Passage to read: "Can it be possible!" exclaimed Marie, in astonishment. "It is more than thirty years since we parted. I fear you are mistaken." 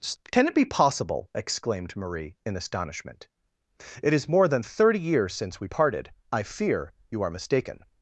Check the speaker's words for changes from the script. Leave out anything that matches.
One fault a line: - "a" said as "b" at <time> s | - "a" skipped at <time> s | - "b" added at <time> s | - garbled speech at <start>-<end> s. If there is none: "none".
none